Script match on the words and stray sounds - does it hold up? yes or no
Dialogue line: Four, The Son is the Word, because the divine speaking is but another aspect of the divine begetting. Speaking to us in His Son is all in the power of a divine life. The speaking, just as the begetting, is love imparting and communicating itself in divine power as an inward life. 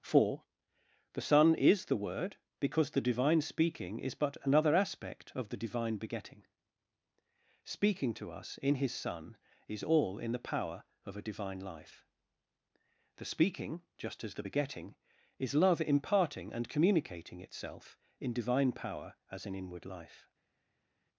yes